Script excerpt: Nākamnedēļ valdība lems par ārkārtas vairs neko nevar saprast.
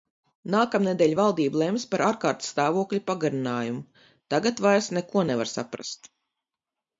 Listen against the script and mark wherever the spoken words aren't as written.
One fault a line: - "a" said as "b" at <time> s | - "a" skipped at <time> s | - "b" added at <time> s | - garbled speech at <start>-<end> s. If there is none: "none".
- "stāvokļa pagarinājumu tagad" added at 2.5 s